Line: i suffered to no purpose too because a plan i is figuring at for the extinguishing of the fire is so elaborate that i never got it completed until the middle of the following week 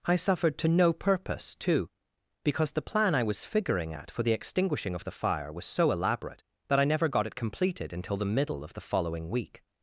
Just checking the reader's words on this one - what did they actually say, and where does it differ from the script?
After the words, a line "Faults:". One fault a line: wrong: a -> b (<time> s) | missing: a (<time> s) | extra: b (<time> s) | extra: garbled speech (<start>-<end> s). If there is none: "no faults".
i suffered to no purpose too because the plan i was figuring at for the extinguishing of the fire was so elaborate that i never got it completed until the middle of the following week
Faults:
wrong: a -> the (2.7 s)
wrong: is -> was (3.2 s)
wrong: is -> was (5.5 s)